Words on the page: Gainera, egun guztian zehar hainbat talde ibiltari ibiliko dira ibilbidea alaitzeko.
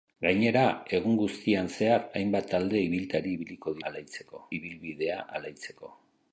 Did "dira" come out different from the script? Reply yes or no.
yes